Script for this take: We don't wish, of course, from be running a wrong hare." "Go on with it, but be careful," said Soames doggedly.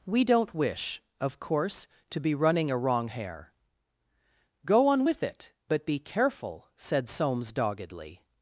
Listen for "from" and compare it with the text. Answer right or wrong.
wrong